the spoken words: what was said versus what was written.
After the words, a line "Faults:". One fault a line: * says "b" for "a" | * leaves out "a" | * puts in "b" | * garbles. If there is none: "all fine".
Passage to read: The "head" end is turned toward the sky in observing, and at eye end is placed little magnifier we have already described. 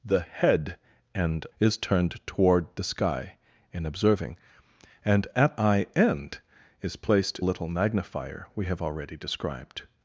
The "head" end is turned toward the sky in observing, and at eye end is placed little magnifier we have already described.
Faults:
all fine